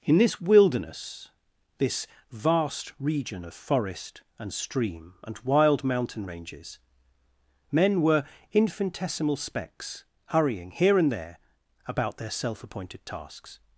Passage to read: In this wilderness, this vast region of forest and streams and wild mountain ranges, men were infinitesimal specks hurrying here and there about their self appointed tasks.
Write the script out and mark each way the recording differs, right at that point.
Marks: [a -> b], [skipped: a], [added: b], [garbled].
In this wilderness, this vast region of forest and [streams -> stream] and wild mountain ranges, men were infinitesimal specks hurrying here and there about their self appointed tasks.